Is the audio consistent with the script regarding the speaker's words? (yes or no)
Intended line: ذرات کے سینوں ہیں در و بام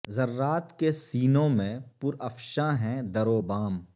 no